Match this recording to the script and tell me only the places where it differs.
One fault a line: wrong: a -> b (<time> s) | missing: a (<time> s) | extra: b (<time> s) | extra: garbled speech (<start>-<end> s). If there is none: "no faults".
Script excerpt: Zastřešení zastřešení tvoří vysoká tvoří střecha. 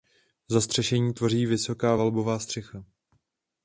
missing: zastřešení (1.1 s)
wrong: tvoří -> valbová (1.9 s)